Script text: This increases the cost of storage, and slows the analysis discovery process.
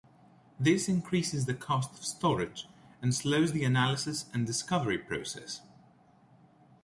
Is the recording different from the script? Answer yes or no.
yes